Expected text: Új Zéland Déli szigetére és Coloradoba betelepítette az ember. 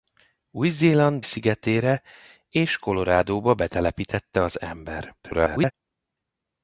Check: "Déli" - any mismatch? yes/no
yes